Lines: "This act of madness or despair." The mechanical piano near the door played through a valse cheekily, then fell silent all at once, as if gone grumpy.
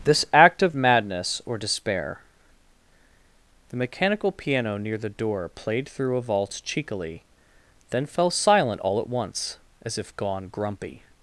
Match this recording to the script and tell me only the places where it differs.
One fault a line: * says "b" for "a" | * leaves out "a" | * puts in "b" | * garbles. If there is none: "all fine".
all fine